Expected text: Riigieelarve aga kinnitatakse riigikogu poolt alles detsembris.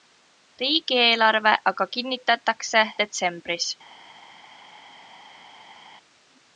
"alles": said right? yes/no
no